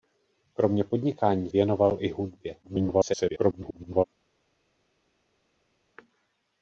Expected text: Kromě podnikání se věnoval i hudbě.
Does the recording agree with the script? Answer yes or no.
no